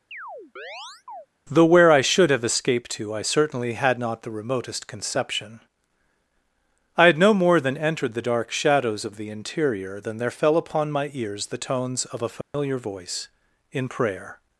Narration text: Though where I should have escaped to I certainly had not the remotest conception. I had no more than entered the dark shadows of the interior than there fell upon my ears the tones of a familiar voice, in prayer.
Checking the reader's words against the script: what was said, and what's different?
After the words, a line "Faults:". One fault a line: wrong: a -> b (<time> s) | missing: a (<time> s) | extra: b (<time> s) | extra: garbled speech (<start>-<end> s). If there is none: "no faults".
Though where I should have escaped to I certainly had not the remotest conception. I had no more than entered the dark shadows of the interior than there fell upon my ears the tones of a familiar voice, in prayer.
Faults:
no faults